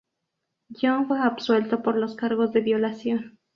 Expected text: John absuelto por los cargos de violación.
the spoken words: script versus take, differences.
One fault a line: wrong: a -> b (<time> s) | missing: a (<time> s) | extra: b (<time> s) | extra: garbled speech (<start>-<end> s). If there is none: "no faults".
extra: fue (1.0 s)